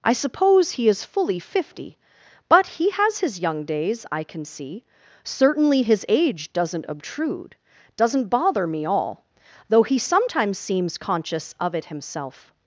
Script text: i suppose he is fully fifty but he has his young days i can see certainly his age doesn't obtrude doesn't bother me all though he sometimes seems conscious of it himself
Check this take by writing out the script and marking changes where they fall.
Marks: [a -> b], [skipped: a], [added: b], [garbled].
i suppose he is fully fifty but he has his young days i can see certainly his age doesn't obtrude doesn't bother me all though he sometimes seems conscious of it himself